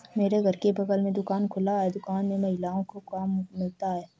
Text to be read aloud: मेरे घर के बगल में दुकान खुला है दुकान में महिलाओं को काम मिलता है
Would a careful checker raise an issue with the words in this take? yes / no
no